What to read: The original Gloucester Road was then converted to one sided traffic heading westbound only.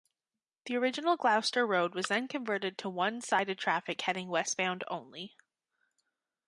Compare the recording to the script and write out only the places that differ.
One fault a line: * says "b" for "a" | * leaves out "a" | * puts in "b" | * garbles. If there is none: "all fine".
all fine